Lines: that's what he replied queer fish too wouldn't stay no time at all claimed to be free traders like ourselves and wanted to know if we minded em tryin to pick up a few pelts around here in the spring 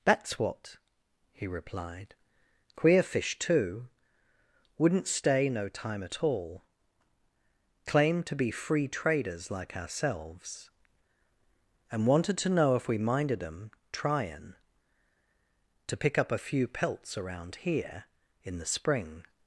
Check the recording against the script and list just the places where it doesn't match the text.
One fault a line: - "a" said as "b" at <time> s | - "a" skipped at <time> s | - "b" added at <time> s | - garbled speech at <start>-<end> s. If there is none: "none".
none